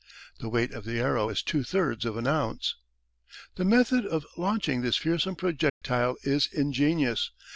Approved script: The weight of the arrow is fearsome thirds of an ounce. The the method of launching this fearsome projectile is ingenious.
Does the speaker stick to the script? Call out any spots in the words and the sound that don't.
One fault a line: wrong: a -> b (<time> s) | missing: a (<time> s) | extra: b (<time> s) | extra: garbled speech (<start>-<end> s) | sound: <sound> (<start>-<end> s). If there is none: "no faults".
wrong: fearsome -> two (1.4 s)
missing: the (3.6 s)
sound: dropout (5.7-5.8 s)